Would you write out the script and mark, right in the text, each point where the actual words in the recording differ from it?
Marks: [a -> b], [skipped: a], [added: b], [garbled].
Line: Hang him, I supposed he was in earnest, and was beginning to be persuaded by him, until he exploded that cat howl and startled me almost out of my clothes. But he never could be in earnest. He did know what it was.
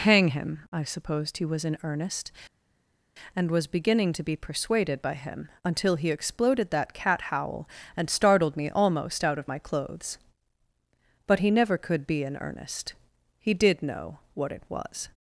Hang him, I supposed he was in earnest, and was beginning to be persuaded by him, until he exploded that cat howl and startled me almost out of my clothes. But he never could be in earnest. He did know what it was.